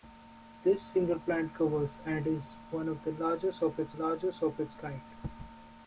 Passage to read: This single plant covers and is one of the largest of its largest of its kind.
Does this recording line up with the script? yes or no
yes